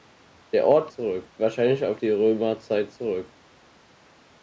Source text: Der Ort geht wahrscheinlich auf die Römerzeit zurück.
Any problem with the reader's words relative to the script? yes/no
yes